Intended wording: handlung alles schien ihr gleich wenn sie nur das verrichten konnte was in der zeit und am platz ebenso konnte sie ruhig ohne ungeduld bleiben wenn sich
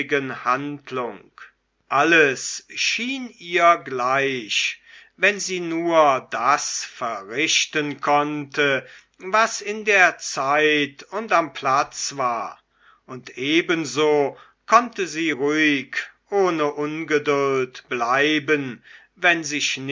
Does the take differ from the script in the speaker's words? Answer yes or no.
yes